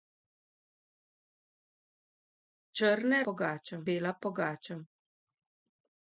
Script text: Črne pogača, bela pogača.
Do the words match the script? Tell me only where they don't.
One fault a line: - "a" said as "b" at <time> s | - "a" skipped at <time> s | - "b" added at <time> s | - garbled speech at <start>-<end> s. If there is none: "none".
none